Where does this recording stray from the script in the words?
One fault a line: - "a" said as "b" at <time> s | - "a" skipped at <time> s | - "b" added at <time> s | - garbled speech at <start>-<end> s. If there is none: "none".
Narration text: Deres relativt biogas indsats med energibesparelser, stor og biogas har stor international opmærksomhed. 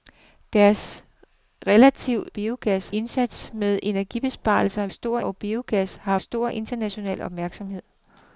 none